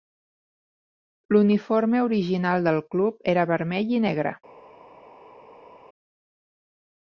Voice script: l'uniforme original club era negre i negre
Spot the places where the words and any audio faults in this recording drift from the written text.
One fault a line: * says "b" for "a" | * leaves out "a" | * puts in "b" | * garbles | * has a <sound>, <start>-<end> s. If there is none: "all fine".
* puts in "del"
* says "vermell" for "negre"